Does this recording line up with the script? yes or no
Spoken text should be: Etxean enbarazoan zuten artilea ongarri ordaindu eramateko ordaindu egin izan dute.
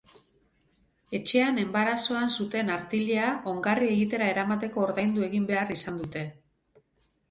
no